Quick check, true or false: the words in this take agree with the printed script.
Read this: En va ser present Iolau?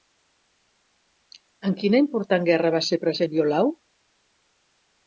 false